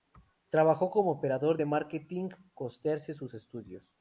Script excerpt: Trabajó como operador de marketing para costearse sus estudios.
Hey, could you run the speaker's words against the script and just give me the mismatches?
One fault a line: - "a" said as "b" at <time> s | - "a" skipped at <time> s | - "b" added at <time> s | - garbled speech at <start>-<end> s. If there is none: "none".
- "para" skipped at 2.3 s